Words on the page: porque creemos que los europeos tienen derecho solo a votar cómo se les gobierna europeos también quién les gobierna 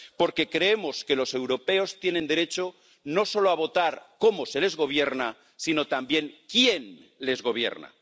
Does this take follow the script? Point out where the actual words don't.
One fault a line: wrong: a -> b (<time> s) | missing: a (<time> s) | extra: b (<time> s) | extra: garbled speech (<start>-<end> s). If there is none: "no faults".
extra: no (3.0 s)
wrong: europeos -> sino (5.5 s)